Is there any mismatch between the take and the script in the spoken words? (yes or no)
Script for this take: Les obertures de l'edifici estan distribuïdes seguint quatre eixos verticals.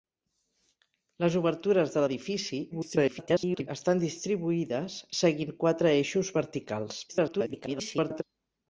yes